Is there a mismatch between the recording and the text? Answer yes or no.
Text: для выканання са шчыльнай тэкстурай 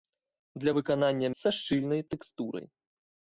no